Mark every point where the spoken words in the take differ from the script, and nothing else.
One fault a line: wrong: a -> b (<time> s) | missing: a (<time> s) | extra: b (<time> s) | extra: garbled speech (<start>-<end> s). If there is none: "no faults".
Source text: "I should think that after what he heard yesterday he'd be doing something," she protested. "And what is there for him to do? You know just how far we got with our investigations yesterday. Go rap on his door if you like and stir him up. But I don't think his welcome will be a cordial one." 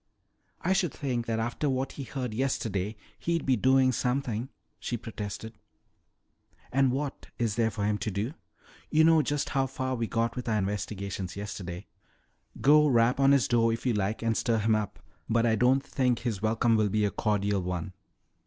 no faults